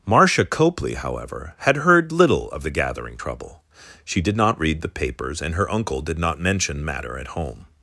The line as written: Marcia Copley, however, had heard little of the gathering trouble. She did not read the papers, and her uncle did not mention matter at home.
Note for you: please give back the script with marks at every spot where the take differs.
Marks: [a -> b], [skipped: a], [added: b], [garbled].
Marcia Copley, however, had heard little of the gathering trouble. She did not read the papers, and her uncle did not mention matter at home.